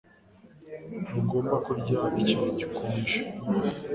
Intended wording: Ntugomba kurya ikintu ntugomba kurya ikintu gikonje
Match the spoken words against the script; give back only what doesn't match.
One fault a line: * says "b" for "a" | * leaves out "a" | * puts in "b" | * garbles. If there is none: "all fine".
* leaves out "ntugomba kurya ikintu"